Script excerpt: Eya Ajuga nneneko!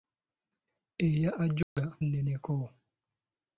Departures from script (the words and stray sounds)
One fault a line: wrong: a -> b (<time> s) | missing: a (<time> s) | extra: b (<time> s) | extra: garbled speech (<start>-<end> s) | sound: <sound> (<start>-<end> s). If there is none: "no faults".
sound: dropout (1.6-1.8 s)